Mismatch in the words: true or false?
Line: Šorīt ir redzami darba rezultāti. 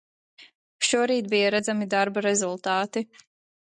true